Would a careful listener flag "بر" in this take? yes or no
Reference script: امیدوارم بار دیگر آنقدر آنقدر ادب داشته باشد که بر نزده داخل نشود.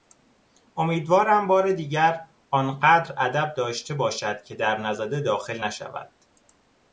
yes